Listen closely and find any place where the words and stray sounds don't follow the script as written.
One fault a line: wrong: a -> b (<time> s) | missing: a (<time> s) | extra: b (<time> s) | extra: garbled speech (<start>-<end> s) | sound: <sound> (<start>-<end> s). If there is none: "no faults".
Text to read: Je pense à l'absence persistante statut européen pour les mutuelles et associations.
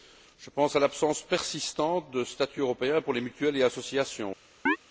extra: de (2.1 s)
sound: chirp (4.7-4.8 s)